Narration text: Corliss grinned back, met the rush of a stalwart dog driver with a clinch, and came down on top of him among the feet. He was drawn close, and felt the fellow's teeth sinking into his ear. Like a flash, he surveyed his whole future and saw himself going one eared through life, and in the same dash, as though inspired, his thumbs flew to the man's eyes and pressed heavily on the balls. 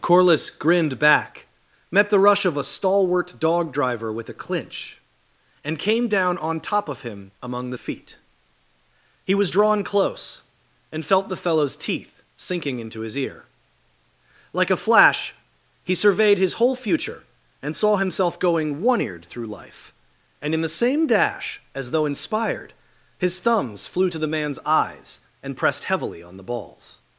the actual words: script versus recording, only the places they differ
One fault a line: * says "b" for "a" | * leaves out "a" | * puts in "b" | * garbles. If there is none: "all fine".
all fine